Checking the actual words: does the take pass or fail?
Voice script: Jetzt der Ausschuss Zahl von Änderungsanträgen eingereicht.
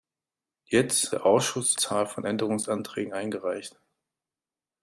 pass